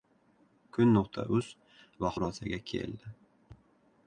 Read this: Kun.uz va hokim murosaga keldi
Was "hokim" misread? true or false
true